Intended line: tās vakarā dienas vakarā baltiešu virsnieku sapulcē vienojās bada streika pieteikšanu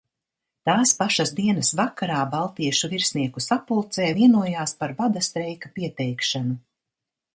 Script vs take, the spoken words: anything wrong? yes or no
yes